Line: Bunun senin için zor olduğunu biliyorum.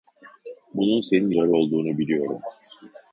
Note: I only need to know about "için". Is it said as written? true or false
false